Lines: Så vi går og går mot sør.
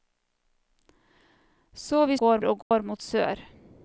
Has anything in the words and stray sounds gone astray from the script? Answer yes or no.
yes